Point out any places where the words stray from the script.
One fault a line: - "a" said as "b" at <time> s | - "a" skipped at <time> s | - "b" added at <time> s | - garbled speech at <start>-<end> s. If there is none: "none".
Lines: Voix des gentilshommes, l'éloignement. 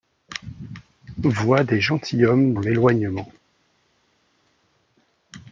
none